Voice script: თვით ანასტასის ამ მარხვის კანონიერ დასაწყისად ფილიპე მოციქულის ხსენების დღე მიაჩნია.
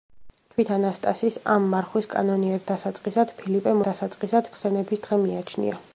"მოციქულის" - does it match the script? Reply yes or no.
no